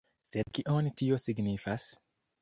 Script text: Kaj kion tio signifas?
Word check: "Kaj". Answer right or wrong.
wrong